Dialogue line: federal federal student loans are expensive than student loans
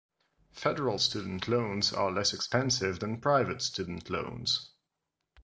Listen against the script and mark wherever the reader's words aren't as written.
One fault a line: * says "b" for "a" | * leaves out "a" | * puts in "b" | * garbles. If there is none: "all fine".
* leaves out "federal"
* puts in "less"
* puts in "private"